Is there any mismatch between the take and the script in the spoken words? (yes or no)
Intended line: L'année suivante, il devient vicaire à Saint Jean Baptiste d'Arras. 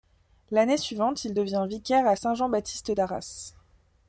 no